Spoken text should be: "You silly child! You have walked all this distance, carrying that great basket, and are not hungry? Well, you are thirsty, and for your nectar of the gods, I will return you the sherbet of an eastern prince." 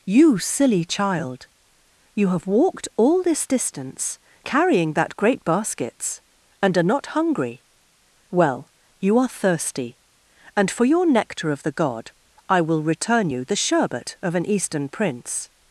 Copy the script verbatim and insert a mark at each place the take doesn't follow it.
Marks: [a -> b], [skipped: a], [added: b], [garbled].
"You silly child! You have walked all this distance, carrying that great [basket, -> baskets] and are not hungry? Well, you are thirsty, and for your nectar of the [gods, -> god] I will return you the sherbet of an eastern prince."